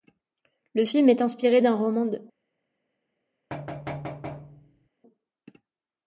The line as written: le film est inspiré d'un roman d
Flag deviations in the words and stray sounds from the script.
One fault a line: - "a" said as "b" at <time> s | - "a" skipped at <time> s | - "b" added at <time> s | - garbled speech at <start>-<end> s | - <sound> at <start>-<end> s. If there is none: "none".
- thud at 3.5-4.9 s